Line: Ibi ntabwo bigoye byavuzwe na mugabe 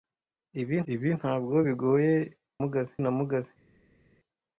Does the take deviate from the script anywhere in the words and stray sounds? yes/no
yes